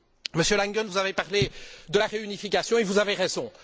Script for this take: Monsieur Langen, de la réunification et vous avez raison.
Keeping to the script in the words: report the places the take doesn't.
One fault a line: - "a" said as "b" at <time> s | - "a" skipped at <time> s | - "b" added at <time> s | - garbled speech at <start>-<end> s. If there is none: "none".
- "vous avez parlé" added at 0.8 s